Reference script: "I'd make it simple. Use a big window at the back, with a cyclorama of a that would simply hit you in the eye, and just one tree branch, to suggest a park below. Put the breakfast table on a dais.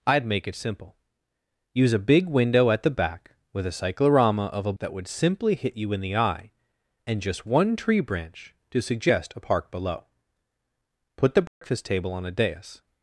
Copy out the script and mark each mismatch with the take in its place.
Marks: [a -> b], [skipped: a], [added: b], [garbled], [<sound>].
"I'd make it simple. Use a big window at the back, with a cyclorama of a that would simply hit you in the eye, and just one tree branch, to suggest a park below. Put the breakfast [dropout] table on a dais.